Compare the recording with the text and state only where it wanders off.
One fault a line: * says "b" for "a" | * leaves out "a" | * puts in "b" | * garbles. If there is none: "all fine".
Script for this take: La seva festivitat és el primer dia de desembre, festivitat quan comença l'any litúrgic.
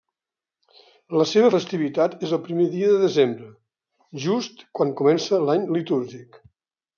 * says "just" for "festivitat"